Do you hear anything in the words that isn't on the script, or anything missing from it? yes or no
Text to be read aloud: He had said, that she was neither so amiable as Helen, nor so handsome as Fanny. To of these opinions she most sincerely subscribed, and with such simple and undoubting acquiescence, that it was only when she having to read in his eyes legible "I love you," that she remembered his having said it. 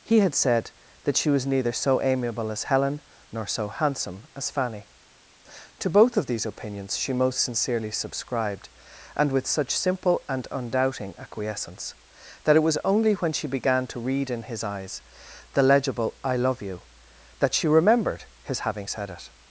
yes